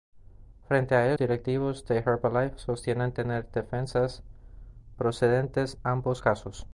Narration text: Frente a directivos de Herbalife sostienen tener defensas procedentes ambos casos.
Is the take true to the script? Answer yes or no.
yes